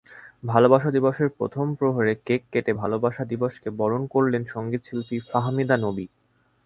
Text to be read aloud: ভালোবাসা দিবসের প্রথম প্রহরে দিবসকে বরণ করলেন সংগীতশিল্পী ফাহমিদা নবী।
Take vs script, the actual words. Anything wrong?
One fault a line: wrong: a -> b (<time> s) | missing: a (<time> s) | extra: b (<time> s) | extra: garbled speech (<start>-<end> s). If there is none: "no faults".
extra: কেক কেটে ভালোবাসা (2.3 s)